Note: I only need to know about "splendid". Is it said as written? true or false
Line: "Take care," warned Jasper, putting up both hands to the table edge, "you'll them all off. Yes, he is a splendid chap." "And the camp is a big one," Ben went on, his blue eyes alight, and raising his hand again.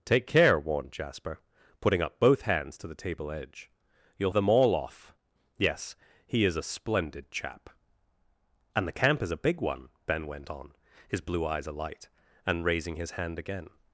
true